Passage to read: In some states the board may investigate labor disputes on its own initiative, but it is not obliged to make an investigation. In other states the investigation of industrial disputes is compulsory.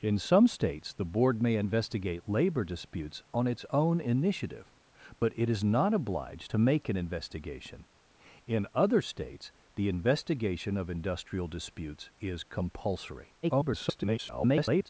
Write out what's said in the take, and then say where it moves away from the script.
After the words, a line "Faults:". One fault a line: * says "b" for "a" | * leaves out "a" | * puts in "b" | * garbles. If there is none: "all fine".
In some states the board may investigate labor disputes on its own initiative, but it is not obliged to make an investigation. In other states the investigation of industrial disputes is compulsory. [garbled]
Faults:
* garbles